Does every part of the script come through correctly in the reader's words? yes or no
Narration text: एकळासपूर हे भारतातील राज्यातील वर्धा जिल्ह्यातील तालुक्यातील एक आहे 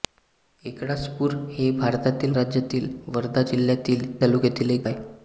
yes